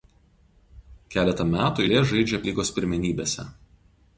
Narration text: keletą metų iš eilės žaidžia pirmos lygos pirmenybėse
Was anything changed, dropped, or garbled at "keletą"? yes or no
no